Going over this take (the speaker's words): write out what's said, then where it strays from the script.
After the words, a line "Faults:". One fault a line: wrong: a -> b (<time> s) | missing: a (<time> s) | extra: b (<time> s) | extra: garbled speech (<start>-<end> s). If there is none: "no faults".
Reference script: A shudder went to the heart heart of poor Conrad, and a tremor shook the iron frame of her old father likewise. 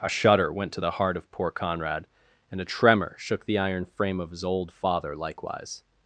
A shudder went to the heart of poor Conrad, and a tremor shook the iron frame of his old father likewise.
Faults:
missing: heart (1.2 s)
wrong: her -> his (4.3 s)